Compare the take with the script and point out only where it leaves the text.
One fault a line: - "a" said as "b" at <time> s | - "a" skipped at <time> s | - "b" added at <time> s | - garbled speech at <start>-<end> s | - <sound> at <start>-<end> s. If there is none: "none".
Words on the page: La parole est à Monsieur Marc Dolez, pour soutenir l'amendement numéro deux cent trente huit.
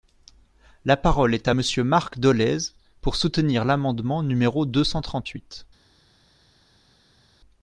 none